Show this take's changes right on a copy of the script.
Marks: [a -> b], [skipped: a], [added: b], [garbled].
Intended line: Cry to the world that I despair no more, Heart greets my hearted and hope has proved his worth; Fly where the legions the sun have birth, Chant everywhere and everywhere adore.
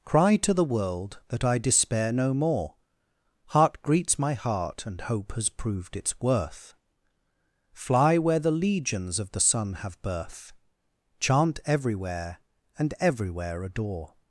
Cry to the world that I despair no more, Heart greets my [hearted -> heart] and hope has proved [his -> its] worth; Fly where the legions [added: of] the sun have birth, Chant everywhere and everywhere adore.